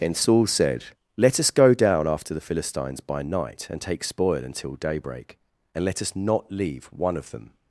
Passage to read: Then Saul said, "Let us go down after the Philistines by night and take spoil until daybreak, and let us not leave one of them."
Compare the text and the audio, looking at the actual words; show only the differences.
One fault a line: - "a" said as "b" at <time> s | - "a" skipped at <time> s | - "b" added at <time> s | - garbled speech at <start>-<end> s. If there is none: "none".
- "Then" said as "And" at 0.0 s